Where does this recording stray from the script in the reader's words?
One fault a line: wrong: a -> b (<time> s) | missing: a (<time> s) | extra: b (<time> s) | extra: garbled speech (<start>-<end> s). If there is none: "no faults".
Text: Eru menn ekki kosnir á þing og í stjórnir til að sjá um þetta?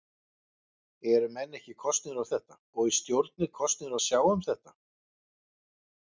wrong: þing -> þetta (2.3 s)
wrong: til -> kosnir (3.6 s)